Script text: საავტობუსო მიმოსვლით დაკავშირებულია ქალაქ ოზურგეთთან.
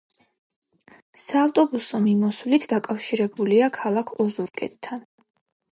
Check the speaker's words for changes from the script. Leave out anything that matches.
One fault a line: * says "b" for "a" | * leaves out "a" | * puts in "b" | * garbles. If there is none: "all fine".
all fine